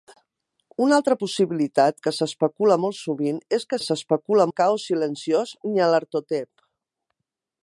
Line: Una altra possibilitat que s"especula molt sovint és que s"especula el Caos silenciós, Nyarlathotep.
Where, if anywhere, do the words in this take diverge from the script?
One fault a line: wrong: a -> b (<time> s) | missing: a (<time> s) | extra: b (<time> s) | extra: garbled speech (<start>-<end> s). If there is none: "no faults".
no faults